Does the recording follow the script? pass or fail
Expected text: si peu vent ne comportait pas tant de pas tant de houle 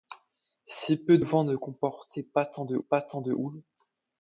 pass